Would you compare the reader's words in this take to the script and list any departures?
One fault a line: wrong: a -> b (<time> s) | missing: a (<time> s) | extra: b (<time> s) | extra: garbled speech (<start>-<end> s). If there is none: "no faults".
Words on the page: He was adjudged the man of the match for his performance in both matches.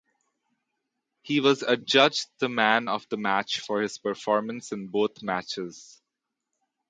no faults